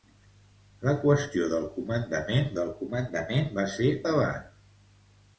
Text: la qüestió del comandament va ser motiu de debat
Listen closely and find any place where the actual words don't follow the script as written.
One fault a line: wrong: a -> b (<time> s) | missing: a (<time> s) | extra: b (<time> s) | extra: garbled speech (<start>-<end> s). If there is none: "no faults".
extra: del comandament (2.6 s)
missing: motiu de (3.9 s)